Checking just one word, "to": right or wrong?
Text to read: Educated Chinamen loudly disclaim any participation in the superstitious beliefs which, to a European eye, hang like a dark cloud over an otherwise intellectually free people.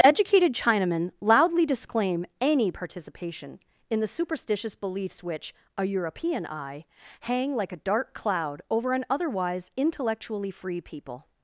wrong